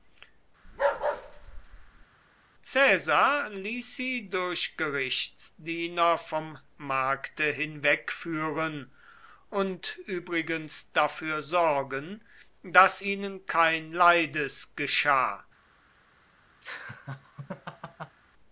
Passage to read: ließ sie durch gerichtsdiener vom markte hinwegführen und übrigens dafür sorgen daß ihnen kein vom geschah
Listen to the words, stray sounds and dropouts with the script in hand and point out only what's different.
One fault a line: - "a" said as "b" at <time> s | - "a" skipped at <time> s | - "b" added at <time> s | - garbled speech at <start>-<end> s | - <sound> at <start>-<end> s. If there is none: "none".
- bark at 0.6-2.1 s
- "vom" said as "leides" at 13.9 s
- laugh at 16.6-18.2 s